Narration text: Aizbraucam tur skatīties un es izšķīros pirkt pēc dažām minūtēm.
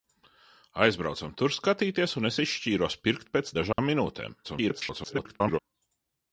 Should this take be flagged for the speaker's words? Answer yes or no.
yes